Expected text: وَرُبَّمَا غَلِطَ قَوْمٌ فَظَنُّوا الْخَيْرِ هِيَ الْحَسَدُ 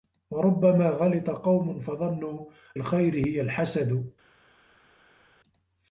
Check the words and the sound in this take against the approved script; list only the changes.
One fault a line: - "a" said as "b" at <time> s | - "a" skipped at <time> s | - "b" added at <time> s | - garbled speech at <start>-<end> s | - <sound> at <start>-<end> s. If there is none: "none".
none